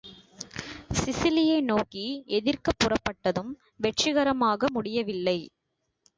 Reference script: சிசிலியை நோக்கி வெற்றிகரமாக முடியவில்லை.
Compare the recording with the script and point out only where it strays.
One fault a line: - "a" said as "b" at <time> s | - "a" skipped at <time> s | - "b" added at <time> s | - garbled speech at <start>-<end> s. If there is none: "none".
- "எதிர்க்கப் புறப்பட்டதும்" added at 2.3 s